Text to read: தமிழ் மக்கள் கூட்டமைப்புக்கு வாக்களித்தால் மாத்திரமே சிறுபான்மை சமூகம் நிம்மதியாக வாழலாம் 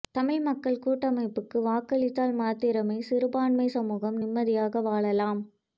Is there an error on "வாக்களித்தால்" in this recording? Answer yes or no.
no